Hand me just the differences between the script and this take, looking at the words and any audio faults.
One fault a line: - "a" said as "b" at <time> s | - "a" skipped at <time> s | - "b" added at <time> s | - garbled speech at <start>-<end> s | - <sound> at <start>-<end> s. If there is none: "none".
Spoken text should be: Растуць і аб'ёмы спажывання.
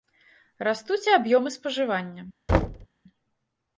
- thud at 2.5-2.9 s